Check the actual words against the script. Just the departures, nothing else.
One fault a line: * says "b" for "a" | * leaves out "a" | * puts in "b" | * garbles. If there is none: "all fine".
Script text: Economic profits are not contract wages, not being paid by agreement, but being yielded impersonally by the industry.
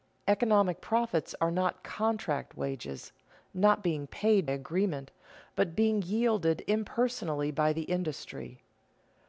* leaves out "by"